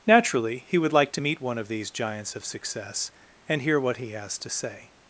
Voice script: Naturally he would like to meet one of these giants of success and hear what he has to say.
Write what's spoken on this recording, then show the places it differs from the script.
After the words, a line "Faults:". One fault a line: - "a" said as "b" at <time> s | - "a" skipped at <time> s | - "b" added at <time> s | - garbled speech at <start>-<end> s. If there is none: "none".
Naturally he would like to meet one of these giants of success and hear what he has to say.
Faults:
none